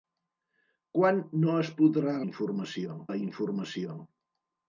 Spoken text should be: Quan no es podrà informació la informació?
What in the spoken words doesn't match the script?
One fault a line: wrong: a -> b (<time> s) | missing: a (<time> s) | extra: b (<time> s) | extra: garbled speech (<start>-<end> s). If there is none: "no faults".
no faults